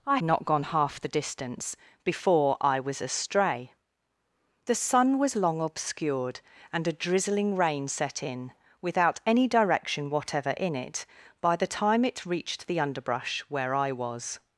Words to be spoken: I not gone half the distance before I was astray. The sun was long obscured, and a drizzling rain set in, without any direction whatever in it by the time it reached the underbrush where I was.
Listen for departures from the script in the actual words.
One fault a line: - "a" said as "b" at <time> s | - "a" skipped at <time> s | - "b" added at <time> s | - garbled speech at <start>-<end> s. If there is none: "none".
none